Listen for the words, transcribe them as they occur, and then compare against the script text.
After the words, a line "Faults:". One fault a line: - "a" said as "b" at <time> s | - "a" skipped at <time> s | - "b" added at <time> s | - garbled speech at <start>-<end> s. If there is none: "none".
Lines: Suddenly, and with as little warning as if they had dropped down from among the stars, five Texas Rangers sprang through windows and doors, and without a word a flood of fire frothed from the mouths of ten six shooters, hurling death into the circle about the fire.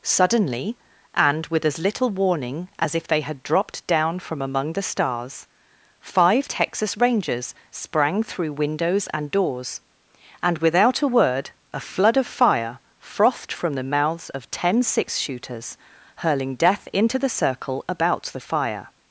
Suddenly, and with as little warning as if they had dropped down from among the stars, five Texas Rangers sprang through windows and doors, and without a word a flood of fire frothed from the mouths of ten six shooters, hurling death into the circle about the fire.
Faults:
none